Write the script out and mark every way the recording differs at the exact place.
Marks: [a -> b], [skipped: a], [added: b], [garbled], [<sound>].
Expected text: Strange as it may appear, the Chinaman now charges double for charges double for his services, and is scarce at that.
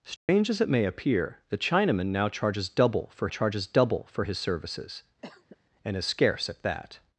Strange [dropout] as it may appear, the Chinaman now charges double for charges double for his services, [cough] and is scarce at that.